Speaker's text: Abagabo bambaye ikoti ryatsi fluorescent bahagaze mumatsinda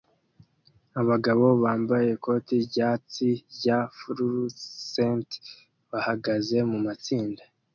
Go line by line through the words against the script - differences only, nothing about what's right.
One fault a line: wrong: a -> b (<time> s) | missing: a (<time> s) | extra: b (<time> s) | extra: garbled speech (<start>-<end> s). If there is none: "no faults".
extra: rya (3.6 s)